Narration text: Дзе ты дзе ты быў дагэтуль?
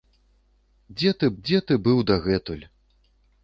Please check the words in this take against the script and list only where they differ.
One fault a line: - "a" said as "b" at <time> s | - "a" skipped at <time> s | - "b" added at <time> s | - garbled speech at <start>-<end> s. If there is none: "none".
none